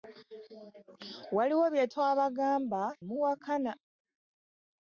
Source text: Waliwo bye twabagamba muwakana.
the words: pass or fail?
pass